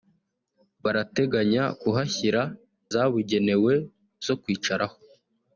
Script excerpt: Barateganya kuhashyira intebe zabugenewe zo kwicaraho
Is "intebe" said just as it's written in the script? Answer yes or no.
no